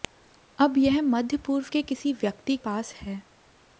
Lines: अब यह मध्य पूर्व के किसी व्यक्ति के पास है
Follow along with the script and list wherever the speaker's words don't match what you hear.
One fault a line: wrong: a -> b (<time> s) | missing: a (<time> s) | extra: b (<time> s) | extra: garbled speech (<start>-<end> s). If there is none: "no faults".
missing: के (2.6 s)